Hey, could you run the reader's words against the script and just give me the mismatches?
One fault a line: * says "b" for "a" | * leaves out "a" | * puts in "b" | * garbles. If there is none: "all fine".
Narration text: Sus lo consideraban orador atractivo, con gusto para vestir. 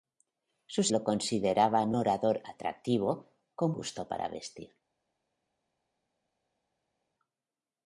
all fine